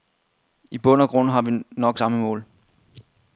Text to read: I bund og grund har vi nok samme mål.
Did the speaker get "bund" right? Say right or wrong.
right